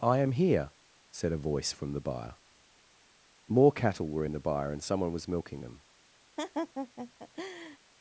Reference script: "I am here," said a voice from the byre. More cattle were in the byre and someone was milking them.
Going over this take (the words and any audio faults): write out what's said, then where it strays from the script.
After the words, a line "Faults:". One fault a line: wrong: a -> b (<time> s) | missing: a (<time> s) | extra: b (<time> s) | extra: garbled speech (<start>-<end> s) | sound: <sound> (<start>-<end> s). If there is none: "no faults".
"I am here," said a voice from the byre. More cattle were in the byre and someone was milking them.
Faults:
sound: laugh (6.4-7.8 s)